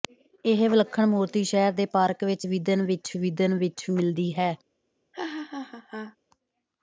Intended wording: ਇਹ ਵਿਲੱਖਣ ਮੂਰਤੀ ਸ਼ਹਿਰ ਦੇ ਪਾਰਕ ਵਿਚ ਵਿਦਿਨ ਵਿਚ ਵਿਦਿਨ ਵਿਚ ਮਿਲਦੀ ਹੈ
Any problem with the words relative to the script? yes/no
no